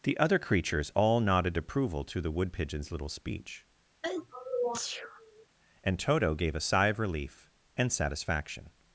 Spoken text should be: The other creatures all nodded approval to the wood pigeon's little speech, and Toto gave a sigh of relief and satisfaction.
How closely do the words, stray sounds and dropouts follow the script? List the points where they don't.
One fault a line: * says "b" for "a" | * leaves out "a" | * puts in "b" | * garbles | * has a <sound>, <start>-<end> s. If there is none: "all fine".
* has a sneeze, 4.0-5.5 s